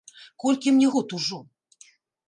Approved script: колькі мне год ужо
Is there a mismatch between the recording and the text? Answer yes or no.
no